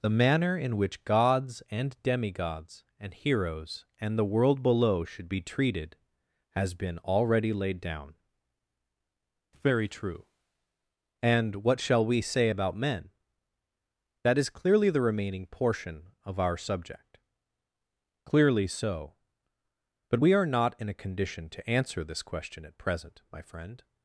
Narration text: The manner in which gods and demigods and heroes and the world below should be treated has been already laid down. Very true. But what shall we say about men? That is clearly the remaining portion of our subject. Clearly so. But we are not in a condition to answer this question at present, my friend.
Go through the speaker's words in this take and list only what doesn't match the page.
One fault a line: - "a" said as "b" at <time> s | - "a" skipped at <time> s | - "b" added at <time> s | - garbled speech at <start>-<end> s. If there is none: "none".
- "But" said as "And" at 11.2 s